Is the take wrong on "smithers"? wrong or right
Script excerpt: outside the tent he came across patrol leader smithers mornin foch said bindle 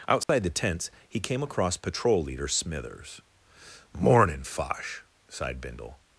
right